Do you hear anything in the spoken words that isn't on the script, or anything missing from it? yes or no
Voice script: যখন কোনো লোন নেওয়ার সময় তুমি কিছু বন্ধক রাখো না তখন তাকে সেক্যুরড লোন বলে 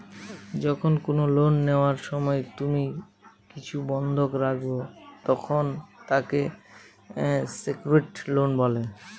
yes